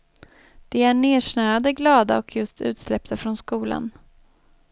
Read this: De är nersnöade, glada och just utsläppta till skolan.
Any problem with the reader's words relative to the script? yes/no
yes